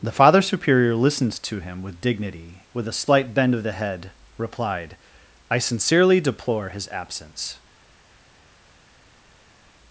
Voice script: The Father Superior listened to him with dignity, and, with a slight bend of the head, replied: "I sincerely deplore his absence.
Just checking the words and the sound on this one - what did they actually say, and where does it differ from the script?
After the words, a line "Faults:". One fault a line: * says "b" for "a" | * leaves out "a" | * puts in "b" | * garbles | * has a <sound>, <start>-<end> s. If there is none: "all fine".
The Father Superior listened to him with dignity, with a slight bend of the head, replied: "I sincerely deplore his absence.
Faults:
* leaves out "and"